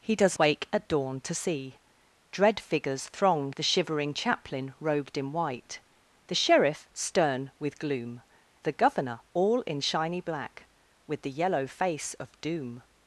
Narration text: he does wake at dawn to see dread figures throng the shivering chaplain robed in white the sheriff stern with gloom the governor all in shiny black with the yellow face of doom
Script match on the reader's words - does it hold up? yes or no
yes